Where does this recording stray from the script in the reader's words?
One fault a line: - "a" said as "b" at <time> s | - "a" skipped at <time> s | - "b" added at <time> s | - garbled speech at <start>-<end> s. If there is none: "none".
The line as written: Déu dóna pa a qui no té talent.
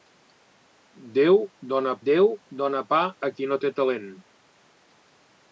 - "déu dóna" added at 2.1 s